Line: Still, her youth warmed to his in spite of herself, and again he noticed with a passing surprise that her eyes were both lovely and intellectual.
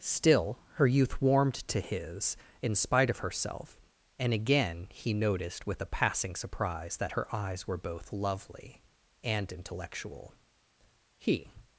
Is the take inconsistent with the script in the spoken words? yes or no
yes